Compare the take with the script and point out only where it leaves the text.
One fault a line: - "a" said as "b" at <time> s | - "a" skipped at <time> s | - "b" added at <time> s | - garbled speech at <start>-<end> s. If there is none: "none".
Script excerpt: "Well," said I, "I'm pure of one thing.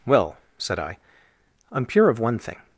none